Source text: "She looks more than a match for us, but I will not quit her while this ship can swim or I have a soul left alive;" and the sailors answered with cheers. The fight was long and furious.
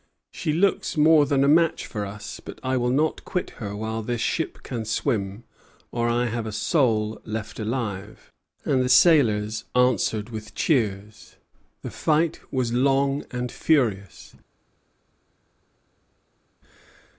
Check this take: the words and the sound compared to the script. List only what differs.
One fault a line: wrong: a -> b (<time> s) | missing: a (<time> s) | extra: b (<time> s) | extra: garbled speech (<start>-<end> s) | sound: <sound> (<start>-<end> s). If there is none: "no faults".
no faults